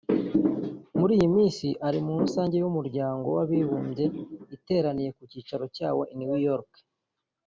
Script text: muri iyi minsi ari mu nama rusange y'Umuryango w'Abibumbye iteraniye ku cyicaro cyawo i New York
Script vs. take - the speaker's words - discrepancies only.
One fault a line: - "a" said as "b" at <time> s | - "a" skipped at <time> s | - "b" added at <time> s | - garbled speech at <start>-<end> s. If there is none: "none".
- "nama" skipped at 2.1 s